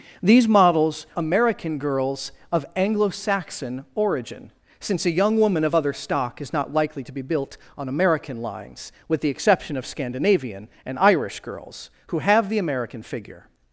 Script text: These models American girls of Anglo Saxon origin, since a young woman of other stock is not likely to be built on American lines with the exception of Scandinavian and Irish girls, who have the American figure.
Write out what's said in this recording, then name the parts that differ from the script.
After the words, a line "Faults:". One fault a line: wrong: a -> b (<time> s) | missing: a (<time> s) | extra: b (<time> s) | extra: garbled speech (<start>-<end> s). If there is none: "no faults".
These models American girls of Anglo Saxon origin, since a young woman of other stock is not likely to be built on American lines with the exception of Scandinavian and Irish girls, who have the American figure.
Faults:
no faults